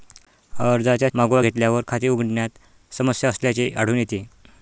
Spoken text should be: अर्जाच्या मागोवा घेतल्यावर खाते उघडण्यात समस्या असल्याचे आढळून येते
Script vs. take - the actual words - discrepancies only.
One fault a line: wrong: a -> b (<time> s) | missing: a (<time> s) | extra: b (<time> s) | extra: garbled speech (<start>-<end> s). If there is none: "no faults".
no faults